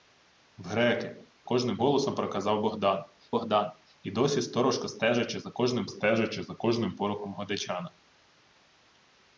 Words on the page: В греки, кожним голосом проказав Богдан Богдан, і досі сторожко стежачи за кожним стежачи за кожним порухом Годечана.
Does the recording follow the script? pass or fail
pass